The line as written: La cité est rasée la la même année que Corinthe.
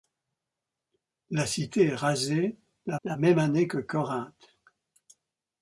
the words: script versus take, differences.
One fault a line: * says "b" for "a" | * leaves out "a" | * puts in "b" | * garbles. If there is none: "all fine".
all fine